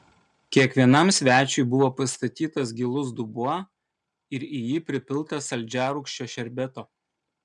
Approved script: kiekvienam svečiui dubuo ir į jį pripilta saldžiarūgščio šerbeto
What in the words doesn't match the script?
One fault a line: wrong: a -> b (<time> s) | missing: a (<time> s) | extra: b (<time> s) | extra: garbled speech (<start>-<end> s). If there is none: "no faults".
extra: buvo pastatytas gilus (1.7 s)